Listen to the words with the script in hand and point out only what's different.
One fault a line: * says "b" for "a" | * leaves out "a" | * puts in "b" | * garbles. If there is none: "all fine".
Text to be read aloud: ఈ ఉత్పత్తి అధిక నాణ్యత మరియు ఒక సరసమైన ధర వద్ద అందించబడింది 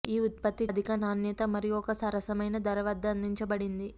all fine